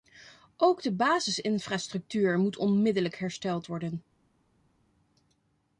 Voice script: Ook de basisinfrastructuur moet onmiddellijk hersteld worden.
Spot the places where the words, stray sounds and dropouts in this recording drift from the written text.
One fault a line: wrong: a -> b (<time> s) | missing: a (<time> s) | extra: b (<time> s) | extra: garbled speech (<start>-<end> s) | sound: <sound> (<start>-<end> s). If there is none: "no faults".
no faults